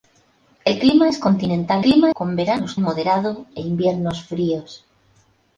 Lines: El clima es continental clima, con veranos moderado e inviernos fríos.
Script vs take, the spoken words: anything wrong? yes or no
no